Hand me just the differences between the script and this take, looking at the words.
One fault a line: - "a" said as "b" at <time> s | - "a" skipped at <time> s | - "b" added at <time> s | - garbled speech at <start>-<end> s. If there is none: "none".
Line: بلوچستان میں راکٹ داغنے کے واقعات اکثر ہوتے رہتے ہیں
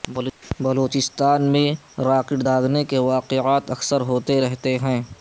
none